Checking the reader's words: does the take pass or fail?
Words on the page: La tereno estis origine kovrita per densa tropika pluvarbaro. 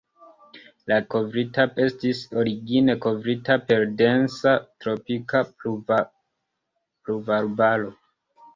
fail